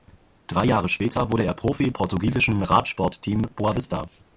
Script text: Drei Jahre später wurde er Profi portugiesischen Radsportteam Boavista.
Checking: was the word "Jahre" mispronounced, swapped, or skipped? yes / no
no